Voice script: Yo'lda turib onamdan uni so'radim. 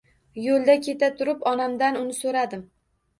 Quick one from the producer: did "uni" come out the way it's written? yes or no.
yes